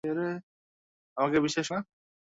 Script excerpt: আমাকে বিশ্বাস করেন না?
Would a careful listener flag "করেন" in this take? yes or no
yes